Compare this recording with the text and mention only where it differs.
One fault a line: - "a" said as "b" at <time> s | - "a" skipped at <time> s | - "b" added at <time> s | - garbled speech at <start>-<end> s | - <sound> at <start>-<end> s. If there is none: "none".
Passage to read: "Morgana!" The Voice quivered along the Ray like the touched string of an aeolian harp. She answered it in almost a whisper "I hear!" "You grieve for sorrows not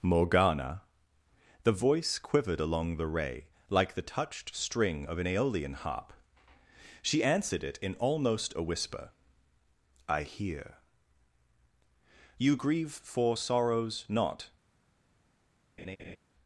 - laugh at 15.8-16.2 s